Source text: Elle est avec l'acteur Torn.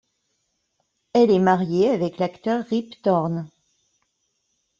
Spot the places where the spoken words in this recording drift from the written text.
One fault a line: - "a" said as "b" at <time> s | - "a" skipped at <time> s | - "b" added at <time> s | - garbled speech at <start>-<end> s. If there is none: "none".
- "mariée" added at 1.4 s
- "Rip" added at 2.6 s